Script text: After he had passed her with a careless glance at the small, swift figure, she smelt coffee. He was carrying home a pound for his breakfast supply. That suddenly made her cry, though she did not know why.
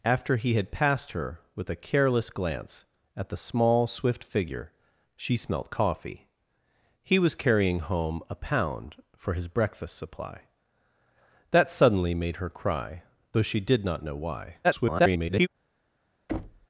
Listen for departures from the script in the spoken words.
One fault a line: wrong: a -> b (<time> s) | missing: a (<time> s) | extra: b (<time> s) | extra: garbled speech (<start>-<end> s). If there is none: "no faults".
extra: garbled speech (14.6-15.5 s)